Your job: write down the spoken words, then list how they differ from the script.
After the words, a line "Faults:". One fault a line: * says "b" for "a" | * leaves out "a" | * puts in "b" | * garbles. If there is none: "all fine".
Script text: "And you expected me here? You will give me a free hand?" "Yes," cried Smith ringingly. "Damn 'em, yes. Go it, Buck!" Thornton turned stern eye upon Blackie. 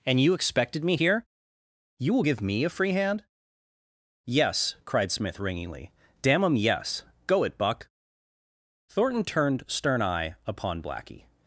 "And you expected me here? You will give me a free hand?" "Yes," cried Smith ringingly. "Damn 'em, yes. Go it, Buck!" Thornton turned stern eye upon Blackie.
Faults:
all fine